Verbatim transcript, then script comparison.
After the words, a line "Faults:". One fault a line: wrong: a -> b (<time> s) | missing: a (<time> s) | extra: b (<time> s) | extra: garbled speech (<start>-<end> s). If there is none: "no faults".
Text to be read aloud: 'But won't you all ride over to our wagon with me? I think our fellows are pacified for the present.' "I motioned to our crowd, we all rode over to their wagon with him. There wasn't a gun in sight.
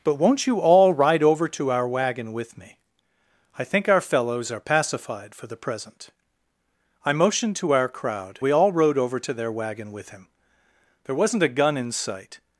'But won't you all ride over to our wagon with me? I think our fellows are pacified for the present.' "I motioned to our crowd, we all rode over to their wagon with him. There wasn't a gun in sight.
Faults:
no faults